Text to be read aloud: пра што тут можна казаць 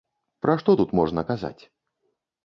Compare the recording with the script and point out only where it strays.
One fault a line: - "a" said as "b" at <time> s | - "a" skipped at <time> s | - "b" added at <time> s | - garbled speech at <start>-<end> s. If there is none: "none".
none